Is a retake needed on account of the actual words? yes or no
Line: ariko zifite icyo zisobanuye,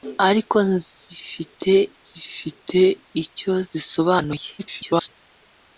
yes